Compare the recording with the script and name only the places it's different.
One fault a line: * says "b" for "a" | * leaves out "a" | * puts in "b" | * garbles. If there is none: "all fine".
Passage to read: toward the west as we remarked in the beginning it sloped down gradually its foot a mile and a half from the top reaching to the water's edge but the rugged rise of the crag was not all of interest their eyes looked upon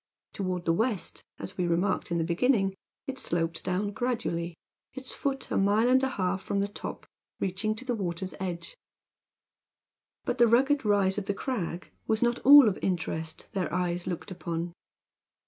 all fine